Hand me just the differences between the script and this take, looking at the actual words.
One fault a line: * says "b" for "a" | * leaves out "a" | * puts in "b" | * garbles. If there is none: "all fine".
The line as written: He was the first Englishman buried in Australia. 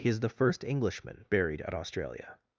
* says "is" for "was"
* says "at" for "in"